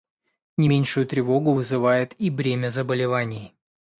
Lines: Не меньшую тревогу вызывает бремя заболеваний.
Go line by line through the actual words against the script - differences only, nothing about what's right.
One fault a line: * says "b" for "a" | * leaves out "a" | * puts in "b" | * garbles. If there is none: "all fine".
* puts in "и"